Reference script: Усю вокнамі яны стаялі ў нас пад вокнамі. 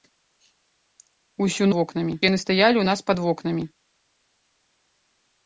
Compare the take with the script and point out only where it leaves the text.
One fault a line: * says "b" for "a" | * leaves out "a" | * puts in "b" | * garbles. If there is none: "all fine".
all fine